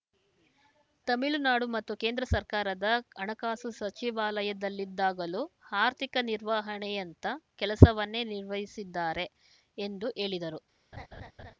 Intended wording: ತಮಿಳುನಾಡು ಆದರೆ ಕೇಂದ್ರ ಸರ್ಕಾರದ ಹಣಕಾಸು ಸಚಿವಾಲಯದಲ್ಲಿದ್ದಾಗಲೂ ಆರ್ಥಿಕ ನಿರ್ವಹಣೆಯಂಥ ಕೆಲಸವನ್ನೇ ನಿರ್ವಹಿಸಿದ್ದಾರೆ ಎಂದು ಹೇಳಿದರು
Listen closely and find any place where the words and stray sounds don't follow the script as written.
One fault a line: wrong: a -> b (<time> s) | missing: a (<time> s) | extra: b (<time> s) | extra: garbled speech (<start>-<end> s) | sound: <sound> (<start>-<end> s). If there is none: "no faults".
wrong: ಆದರೆ -> ಮತ್ತು (1.7 s)
sound: laugh (10.9-11.5 s)